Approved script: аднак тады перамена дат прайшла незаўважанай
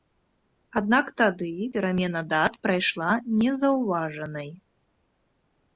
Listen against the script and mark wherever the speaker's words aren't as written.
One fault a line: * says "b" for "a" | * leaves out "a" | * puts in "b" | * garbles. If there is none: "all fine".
all fine